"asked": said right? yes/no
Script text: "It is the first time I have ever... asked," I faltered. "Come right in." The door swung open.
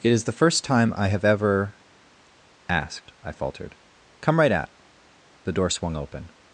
yes